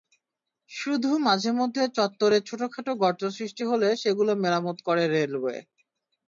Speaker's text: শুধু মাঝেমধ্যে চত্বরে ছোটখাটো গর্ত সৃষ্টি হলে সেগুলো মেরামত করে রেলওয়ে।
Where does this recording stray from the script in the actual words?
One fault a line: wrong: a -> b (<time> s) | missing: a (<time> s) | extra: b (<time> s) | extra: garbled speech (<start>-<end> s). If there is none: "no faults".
no faults